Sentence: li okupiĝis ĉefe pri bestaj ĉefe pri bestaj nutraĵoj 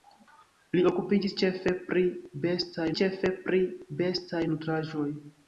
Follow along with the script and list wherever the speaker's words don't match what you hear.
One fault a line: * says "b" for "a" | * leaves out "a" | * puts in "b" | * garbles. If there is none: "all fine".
all fine